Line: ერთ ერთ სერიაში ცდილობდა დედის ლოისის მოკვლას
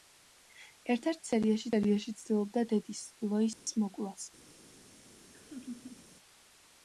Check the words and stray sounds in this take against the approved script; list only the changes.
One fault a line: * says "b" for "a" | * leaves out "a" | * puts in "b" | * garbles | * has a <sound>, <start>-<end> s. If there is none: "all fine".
* puts in "სერიაში"
* has a dropout, 3.5-3.7 s
* has a laugh, 5.3-6.1 s